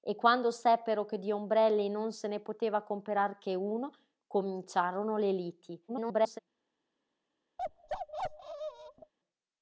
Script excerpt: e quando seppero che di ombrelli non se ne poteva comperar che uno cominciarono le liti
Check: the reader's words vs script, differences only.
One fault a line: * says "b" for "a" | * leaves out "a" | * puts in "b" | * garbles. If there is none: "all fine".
* garbles